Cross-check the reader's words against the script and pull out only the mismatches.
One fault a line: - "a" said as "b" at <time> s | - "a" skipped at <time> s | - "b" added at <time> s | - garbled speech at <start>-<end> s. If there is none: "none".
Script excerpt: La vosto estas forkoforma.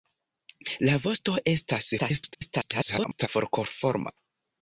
- garbled speech at 2.0-3.3 s